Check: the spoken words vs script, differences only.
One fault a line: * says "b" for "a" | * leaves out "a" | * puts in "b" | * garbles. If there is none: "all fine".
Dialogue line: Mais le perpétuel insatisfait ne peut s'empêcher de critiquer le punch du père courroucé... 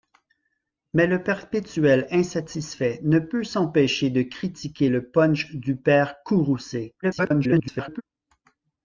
* garbles